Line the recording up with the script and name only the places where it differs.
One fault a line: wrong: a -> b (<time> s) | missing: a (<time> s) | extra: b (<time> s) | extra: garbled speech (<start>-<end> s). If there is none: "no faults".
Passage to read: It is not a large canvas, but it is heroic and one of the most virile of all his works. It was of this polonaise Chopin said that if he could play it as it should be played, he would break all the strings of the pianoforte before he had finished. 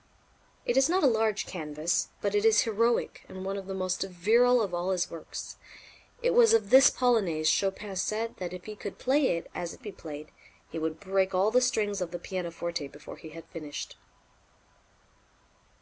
missing: should (9.8 s)